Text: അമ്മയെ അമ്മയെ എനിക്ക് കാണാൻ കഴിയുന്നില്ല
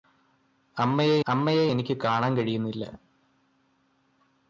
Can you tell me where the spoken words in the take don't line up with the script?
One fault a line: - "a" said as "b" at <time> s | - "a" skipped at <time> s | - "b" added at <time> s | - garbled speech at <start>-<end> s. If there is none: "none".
none